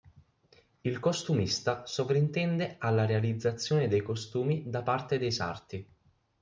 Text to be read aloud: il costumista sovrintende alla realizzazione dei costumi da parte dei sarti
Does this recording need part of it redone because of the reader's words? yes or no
no